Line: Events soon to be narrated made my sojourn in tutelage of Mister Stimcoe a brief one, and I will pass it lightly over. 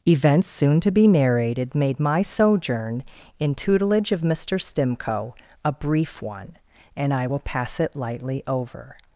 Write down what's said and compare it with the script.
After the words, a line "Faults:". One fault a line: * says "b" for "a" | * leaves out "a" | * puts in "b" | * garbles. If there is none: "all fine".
Events soon to be narrated made my sojourn in tutelage of Mister Stimcoe a brief one, and I will pass it lightly over.
Faults:
all fine